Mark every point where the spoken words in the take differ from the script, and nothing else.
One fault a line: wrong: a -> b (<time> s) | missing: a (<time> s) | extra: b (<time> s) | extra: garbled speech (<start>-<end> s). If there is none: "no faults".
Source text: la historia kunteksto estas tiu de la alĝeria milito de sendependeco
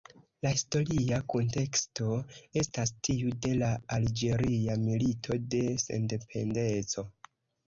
no faults